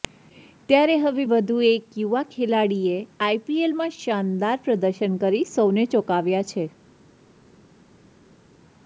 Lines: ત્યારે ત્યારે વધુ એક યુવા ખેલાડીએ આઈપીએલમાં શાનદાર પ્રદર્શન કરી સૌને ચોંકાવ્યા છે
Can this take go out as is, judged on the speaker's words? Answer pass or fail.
fail